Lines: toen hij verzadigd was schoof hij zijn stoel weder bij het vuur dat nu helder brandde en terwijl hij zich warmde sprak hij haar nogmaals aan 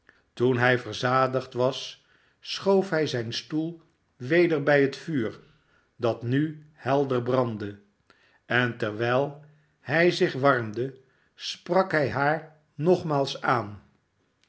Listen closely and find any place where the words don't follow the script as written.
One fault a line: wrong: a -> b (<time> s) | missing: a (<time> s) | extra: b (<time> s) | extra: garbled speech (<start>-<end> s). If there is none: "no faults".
no faults